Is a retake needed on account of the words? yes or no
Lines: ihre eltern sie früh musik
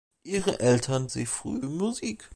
no